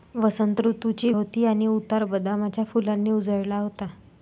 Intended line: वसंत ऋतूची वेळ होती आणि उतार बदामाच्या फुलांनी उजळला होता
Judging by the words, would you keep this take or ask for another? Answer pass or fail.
fail